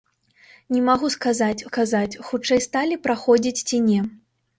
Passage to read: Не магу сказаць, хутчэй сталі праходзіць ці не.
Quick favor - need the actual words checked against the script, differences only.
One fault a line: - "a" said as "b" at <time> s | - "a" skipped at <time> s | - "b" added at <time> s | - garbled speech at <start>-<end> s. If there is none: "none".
- "сказаць" added at 1.7 s